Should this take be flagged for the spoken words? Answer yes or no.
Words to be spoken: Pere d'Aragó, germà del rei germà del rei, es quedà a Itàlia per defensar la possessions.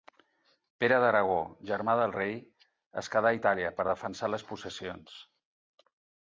yes